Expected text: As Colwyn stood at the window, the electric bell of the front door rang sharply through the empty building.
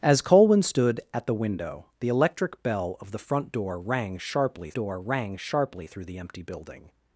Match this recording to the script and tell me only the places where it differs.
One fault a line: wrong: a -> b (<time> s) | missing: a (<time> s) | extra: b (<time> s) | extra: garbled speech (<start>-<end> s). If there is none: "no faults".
extra: door rang sharply (4.7 s)